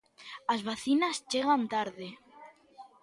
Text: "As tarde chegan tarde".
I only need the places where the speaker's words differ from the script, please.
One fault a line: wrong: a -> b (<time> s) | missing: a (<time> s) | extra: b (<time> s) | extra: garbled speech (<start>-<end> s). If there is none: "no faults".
wrong: tarde -> vacinas (0.7 s)